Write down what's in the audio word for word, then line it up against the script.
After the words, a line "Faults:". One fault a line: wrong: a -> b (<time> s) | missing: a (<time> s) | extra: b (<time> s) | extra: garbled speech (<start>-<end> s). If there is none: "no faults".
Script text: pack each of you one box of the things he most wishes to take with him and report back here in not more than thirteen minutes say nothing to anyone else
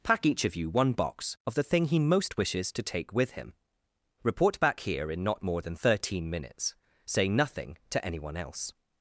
pack each of you one box of the thing he most wishes to take with him report back here in not more than thirteen minutes say nothing to anyone else
Faults:
wrong: things -> thing (1.6 s)
missing: and (3.5 s)